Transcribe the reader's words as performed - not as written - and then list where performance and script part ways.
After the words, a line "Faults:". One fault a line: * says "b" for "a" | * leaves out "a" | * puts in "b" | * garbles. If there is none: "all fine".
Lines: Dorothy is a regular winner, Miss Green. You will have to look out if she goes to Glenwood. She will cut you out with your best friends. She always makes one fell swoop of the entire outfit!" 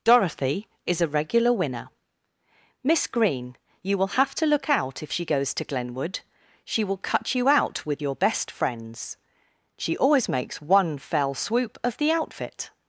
Dorothy is a regular winner, Miss Green. You will have to look out if she goes to Glenwood. She will cut you out with your best friends. She always makes one fell swoop of the outfit!"
Faults:
* leaves out "entire"